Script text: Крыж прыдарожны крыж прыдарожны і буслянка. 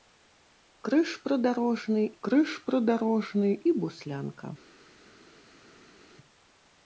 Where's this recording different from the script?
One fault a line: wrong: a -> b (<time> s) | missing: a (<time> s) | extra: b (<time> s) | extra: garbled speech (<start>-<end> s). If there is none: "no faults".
no faults